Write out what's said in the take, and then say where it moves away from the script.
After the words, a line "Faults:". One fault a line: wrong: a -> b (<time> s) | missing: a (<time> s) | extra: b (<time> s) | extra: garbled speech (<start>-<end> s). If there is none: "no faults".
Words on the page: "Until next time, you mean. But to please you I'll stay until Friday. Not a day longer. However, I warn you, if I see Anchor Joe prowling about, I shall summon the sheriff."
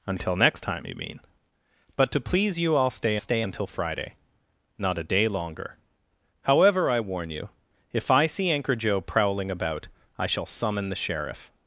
"Until next time, you mean. But to please you I'll stay stay until Friday. Not a day longer. However, I warn you, if I see Anchor Joe prowling about, I shall summon the sheriff."
Faults:
extra: stay (3.2 s)